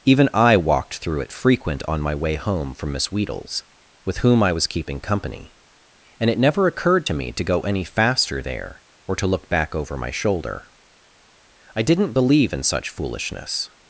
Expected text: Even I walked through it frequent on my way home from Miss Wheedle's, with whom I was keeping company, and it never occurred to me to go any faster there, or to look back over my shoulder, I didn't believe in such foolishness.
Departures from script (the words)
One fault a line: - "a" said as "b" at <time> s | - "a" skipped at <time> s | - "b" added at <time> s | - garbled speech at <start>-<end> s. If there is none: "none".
none